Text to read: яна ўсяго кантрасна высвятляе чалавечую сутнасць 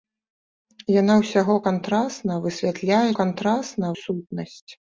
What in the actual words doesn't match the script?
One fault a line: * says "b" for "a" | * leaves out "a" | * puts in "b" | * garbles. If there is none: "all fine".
* says "кантрасна" for "чалавечую"